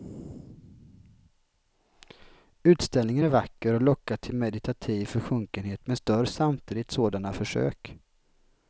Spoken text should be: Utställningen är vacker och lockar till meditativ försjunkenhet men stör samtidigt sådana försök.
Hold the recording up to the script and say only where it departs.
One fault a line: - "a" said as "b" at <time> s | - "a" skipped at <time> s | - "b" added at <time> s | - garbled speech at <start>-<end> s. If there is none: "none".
none